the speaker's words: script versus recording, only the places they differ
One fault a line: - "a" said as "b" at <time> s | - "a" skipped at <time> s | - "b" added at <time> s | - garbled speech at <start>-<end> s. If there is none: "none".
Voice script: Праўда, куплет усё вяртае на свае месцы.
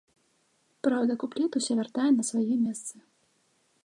none